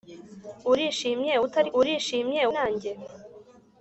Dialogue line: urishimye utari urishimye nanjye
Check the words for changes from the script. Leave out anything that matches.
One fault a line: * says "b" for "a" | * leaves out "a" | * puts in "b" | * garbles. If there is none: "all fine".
all fine